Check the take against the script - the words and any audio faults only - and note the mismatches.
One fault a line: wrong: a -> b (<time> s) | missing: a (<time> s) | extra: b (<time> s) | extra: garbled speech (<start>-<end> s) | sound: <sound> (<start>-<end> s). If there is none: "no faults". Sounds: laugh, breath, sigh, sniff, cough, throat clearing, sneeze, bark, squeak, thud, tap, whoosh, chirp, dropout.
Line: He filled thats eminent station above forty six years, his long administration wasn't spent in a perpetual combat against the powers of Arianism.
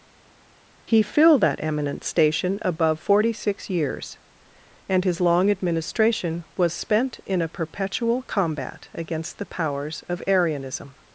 wrong: thats -> that (1.4 s)
extra: and (4.9 s)
wrong: wasn't -> was (6.6 s)